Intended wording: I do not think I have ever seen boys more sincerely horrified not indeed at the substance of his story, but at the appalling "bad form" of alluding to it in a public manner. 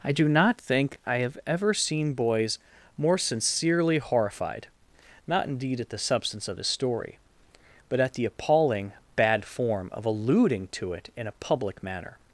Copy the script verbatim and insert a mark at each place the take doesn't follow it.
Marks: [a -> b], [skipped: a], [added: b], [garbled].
I do not think I have ever seen boys more sincerely horrified not indeed at the substance of his story, but at the appalling "bad form" of alluding to it in a public manner.